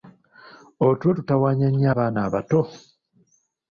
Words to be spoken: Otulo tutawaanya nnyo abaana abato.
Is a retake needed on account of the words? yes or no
no